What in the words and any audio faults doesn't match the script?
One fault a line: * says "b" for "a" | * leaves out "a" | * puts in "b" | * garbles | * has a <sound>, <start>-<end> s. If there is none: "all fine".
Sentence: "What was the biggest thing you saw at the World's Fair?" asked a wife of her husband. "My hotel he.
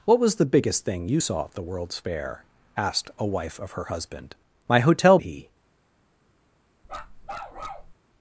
* has a bark, 6.8-7.9 s